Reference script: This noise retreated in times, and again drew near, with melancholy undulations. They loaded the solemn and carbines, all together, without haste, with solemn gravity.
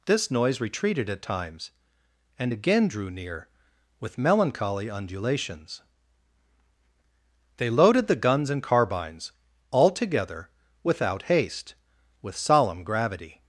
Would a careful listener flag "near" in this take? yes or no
no